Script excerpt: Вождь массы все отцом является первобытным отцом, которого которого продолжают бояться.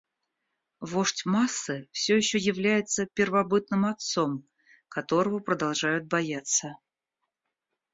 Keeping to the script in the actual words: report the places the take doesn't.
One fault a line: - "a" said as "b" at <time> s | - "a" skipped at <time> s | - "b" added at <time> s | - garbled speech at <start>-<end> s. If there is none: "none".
- "отцом" said as "еще" at 2.2 s
- "которого" skipped at 5.4 s